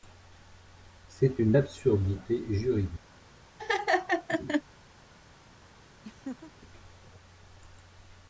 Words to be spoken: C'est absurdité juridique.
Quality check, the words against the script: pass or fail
fail